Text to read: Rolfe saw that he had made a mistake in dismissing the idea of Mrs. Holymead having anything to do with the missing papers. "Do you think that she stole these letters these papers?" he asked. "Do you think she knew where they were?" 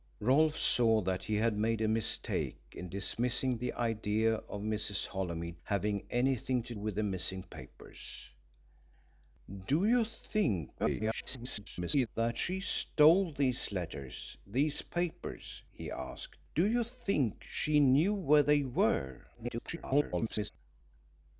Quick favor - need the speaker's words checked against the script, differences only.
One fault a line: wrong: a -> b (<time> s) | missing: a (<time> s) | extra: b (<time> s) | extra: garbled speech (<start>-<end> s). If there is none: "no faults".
missing: do (6.7 s)
extra: garbled speech (10.8-12.1 s)
extra: garbled speech (19.3-20.5 s)